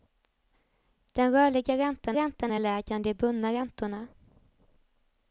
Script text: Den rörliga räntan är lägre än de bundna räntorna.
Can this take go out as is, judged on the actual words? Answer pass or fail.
fail